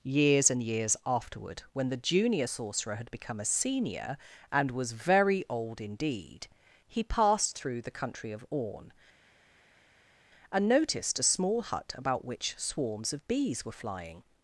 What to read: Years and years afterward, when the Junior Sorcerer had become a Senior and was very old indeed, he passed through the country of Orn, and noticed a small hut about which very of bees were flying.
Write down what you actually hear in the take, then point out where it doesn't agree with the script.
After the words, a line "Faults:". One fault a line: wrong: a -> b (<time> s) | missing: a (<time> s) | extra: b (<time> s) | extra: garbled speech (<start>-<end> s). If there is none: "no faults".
Years and years afterward, when the Junior Sorcerer had become a Senior and was very old indeed, he passed through the country of Orn, and noticed a small hut about which swarms of bees were flying.
Faults:
wrong: very -> swarms (12.6 s)